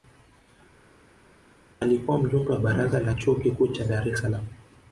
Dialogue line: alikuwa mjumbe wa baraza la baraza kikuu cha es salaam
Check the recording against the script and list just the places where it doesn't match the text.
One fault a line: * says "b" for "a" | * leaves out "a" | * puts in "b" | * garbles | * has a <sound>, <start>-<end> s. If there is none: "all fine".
* says "chuo" for "baraza"
* puts in "dar"